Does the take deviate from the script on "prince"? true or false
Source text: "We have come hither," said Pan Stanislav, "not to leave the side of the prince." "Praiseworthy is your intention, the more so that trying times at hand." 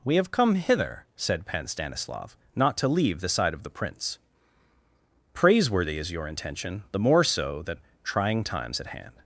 false